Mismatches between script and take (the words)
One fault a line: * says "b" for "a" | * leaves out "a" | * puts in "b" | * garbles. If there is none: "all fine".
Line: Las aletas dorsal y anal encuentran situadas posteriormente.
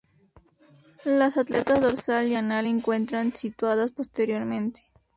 all fine